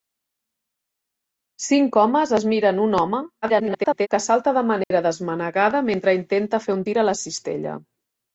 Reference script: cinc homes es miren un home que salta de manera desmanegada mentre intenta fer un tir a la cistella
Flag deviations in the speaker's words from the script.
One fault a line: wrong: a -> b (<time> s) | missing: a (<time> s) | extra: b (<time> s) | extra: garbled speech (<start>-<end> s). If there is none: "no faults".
extra: garbled speech (3.4-4.1 s)